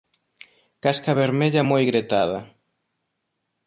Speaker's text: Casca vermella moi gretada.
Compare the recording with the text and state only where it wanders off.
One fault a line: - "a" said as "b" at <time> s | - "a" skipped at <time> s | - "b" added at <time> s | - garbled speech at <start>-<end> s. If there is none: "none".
none